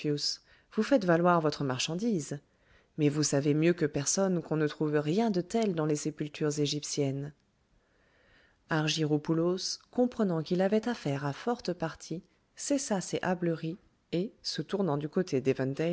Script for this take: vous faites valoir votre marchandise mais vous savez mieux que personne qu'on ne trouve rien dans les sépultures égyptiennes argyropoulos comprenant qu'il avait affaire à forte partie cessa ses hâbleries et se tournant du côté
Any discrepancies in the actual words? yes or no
yes